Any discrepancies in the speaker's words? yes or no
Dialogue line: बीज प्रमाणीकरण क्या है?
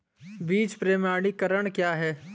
no